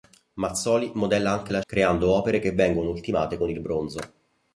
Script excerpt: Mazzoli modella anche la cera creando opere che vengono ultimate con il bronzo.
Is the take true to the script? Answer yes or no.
no